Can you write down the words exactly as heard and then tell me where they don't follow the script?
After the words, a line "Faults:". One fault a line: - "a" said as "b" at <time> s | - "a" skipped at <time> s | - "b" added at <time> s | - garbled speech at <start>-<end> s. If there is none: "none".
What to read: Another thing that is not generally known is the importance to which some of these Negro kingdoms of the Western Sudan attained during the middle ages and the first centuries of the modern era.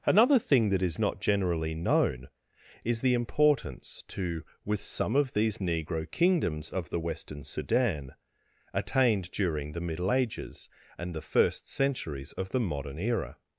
Another thing that is not generally known is the importance to with some of these Negro kingdoms of the Western Sudan attained during the middle ages and the first centuries of the modern era.
Faults:
- "which" said as "with" at 4.7 s